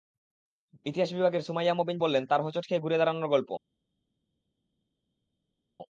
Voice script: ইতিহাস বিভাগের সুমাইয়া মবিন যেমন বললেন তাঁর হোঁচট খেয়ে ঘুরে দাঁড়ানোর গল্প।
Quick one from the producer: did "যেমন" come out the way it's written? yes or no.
no